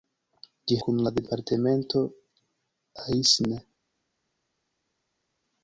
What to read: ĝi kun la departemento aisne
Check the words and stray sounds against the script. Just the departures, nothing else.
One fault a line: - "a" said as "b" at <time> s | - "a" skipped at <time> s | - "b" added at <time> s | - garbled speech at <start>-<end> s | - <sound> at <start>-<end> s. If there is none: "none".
none